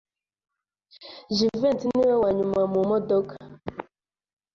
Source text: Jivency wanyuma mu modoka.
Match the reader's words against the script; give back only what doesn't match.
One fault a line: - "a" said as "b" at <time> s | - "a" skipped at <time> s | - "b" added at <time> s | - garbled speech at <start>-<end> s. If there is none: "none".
- "niwe" added at 1.9 s